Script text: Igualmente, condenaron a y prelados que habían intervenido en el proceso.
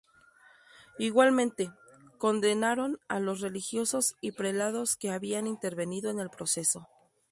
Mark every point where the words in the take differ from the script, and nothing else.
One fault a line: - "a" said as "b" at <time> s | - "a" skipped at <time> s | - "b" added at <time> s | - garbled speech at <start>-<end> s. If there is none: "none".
- "los religiosos" added at 3.2 s